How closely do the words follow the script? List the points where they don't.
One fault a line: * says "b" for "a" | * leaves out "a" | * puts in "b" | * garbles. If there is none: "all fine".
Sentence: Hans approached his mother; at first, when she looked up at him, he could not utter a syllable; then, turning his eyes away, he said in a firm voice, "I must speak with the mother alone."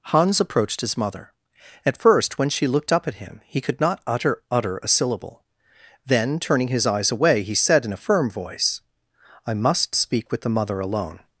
* puts in "utter"